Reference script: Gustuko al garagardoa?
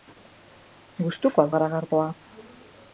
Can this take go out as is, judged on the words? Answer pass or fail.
pass